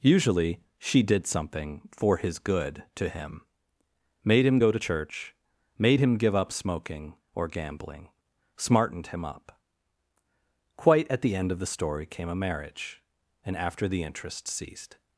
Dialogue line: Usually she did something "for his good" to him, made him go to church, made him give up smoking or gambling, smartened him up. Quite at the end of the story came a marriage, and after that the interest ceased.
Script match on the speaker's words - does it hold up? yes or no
no